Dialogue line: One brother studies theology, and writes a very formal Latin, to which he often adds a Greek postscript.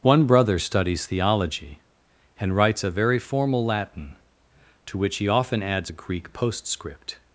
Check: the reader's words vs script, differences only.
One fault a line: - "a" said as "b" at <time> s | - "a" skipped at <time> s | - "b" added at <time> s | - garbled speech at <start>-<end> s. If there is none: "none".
none